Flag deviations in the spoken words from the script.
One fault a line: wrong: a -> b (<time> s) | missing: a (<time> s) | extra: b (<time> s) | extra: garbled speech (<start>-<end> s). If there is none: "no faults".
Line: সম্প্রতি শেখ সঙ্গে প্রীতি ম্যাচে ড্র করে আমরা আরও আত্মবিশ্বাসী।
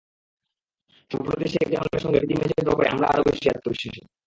extra: জামালের (1.7 s)
extra: বেশি (3.3 s)